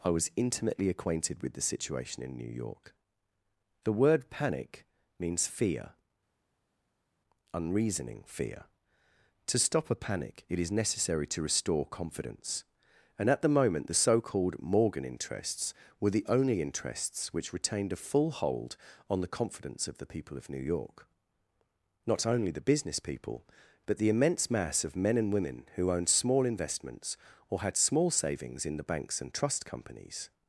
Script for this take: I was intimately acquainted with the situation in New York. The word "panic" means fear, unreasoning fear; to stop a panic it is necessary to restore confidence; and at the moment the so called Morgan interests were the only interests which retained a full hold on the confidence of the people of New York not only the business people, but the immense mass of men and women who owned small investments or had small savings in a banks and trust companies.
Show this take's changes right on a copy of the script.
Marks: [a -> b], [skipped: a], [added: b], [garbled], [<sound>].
I was intimately acquainted with the situation in New York. The word "panic" means fear, unreasoning fear; to stop a panic it is necessary to restore confidence; and at the moment the so called Morgan interests were the only interests which retained a full hold on the confidence of the people of New York not only the business people, but the immense mass of men and women who owned small investments or had small savings in [a -> the] banks and trust companies.